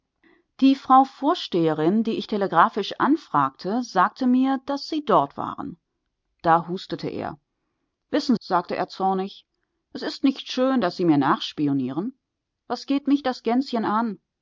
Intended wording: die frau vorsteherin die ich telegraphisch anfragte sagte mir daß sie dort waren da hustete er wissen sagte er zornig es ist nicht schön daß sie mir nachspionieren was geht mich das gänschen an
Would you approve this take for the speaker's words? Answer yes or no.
yes